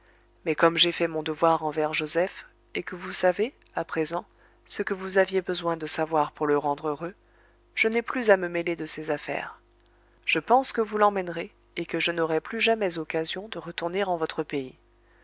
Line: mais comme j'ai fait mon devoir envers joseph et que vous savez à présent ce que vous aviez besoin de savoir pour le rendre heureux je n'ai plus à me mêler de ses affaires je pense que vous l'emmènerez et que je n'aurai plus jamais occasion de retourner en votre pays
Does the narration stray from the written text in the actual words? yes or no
no